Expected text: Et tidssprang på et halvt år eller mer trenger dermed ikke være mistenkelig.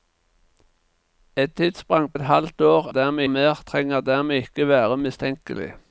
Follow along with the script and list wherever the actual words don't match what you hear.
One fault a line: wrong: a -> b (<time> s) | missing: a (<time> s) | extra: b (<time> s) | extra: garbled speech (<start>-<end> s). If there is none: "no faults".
missing: på (2.1 s)
wrong: eller -> dermed (2.9 s)